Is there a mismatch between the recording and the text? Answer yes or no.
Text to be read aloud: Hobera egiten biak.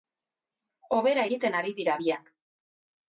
yes